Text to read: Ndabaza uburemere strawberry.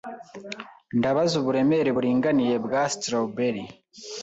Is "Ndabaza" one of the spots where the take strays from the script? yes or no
no